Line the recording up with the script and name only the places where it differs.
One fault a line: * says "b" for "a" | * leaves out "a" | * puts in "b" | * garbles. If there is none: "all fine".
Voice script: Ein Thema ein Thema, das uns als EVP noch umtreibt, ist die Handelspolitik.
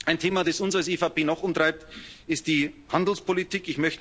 * leaves out "ein Thema"